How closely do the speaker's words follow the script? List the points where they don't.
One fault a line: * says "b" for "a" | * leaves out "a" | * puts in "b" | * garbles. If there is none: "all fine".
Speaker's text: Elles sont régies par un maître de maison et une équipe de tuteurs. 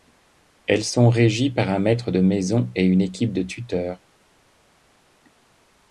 all fine